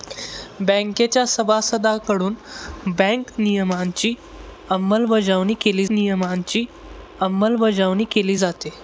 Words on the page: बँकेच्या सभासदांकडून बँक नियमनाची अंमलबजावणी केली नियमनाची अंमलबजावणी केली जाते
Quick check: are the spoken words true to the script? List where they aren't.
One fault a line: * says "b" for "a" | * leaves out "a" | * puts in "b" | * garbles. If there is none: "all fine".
all fine